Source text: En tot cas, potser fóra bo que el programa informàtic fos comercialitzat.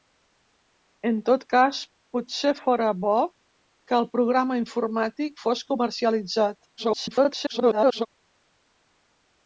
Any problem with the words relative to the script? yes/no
yes